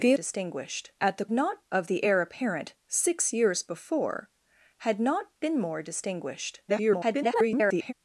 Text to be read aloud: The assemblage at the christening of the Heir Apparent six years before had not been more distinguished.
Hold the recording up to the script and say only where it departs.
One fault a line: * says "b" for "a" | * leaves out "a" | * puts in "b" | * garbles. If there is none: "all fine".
* says "distinguished" for "assemblage"
* says "not" for "christening"
* garbles